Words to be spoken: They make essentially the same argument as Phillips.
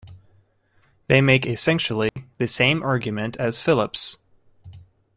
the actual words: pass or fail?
pass